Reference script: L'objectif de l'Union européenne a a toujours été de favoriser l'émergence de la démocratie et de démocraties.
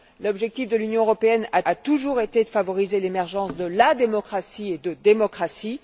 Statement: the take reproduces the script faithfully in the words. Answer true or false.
true